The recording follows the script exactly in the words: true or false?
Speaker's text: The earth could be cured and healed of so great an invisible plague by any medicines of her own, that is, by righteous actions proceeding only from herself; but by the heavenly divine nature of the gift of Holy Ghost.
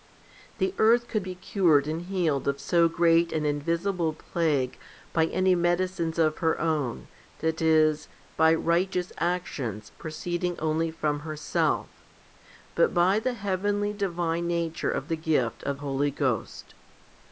true